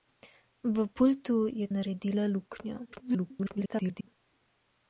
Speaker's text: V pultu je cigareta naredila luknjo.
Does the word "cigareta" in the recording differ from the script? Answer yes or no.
yes